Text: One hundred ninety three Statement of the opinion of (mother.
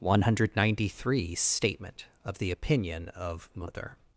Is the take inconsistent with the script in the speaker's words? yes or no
no